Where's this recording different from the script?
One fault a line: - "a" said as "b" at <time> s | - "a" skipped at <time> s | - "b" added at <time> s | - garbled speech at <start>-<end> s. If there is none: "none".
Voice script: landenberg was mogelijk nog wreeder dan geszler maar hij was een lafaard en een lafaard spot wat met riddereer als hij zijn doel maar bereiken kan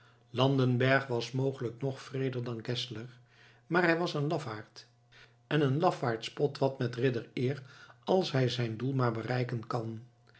none